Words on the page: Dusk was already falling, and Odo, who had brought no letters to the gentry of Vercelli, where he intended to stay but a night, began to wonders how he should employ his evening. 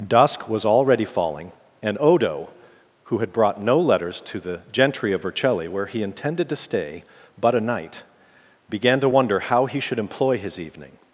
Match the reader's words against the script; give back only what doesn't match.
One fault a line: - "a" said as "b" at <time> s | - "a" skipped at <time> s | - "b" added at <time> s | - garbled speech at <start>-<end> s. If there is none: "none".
- "wonders" said as "wonder" at 9.1 s